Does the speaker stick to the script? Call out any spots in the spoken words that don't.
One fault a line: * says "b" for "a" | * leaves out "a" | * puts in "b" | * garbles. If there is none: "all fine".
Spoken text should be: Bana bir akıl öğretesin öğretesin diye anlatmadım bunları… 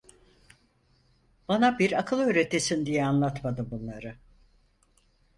* leaves out "öğretesin"